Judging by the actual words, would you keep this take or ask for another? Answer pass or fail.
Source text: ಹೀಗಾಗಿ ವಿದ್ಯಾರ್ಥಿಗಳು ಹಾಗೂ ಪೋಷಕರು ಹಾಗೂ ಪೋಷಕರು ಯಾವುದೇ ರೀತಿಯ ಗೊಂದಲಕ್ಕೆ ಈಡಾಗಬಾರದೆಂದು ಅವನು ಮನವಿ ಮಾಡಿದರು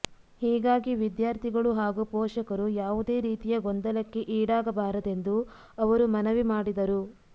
fail